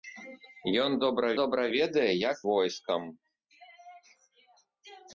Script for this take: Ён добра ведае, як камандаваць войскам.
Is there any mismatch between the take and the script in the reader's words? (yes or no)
yes